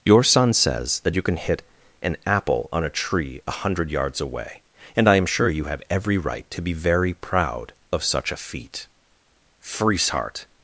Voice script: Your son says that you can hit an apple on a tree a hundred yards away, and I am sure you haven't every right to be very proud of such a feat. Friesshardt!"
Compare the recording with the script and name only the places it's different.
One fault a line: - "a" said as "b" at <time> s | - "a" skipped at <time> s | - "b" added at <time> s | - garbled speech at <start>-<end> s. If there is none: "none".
- "haven't" said as "have" at 5.7 s